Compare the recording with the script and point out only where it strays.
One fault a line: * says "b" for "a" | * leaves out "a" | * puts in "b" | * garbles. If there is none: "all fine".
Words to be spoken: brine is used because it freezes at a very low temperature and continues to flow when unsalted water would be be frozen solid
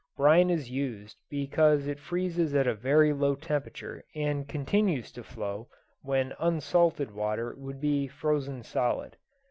* leaves out "be"